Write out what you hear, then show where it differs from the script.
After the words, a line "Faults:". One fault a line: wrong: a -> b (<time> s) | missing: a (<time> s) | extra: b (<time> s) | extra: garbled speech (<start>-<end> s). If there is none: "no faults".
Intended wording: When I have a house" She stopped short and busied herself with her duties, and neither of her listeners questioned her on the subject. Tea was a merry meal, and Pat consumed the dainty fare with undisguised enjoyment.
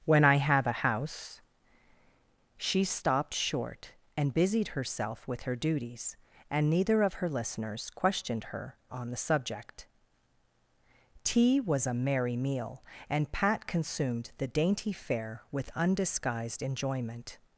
When I have a house" She stopped short and busied herself with her duties, and neither of her listeners questioned her on the subject. Tea was a merry meal, and Pat consumed the dainty fare with undisguised enjoyment.
Faults:
no faults